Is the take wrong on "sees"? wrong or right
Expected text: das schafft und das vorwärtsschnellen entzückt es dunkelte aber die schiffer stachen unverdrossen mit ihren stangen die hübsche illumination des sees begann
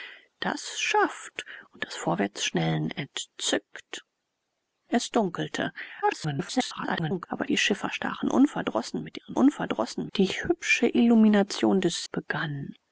wrong